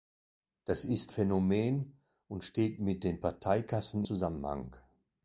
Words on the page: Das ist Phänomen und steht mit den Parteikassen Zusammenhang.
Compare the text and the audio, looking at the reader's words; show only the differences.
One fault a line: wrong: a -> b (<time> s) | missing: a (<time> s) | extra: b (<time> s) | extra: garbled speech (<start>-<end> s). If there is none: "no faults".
no faults